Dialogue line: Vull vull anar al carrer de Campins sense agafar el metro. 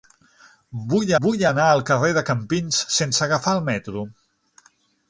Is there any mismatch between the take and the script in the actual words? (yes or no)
no